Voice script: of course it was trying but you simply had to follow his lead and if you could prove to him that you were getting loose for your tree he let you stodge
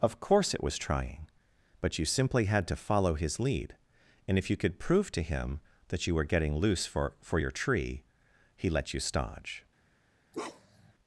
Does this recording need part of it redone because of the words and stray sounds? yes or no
yes